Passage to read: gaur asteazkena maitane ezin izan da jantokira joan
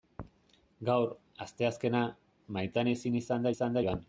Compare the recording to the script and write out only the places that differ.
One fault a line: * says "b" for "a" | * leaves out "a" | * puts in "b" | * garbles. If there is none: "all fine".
* says "izan" for "jantokira"